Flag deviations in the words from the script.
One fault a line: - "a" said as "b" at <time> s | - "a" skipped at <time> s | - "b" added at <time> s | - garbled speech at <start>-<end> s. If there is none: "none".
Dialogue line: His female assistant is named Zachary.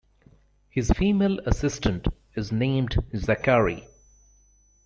none